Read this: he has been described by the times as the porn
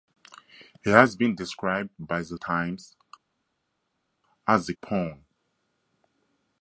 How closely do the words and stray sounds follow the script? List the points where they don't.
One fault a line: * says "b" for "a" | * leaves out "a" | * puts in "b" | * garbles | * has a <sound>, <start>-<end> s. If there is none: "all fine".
all fine